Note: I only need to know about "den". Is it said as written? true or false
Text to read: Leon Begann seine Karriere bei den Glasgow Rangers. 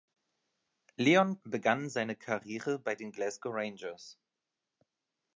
true